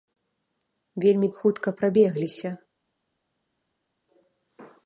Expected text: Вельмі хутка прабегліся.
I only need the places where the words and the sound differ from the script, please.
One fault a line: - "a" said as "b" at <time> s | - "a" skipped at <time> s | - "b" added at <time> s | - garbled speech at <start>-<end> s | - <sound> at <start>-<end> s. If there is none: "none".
none